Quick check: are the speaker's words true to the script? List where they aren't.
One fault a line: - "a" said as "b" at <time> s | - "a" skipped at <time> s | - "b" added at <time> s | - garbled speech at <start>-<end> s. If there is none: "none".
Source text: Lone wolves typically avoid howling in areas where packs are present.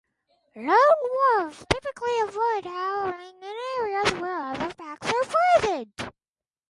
- "other" added at 4.4 s